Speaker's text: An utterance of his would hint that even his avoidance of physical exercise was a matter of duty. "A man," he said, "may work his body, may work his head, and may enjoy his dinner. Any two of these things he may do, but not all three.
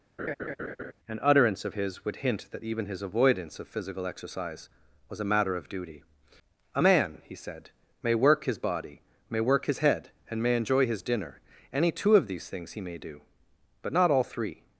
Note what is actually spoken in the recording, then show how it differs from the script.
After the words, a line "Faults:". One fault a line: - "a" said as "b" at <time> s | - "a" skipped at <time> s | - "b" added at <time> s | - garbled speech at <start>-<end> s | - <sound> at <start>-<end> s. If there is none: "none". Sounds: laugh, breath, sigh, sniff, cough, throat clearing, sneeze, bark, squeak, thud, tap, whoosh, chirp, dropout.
An utterance of his would hint that even his avoidance of physical exercise was a matter of duty. "A man," he said, "may work his body, may work his head, and may enjoy his dinner. Any two of these things he may do, but not all three.
Faults:
- laugh at 0.2-0.9 s